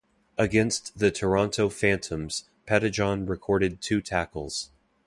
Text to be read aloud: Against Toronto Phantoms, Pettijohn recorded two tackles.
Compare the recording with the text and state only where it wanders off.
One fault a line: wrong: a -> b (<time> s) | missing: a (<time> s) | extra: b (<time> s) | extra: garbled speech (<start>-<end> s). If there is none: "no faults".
extra: the (1.0 s)